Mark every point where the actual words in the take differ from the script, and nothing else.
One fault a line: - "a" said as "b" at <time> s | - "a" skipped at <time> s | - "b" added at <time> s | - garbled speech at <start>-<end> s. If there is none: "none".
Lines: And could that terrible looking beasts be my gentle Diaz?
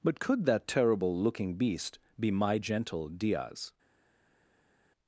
- "And" said as "But" at 0.0 s
- "beasts" said as "beast" at 1.5 s